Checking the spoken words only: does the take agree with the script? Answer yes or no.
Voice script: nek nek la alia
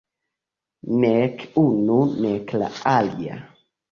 no